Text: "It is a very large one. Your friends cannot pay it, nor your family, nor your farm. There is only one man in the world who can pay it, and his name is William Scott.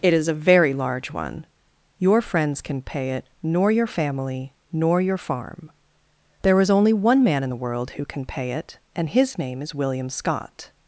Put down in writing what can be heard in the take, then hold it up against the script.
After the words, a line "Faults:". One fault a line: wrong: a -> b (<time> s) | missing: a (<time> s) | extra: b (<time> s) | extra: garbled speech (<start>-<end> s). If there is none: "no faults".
"It is a very large one. Your friends can pay it, nor your family, nor your farm. There is only one man in the world who can pay it, and his name is William Scott.
Faults:
wrong: cannot -> can (2.6 s)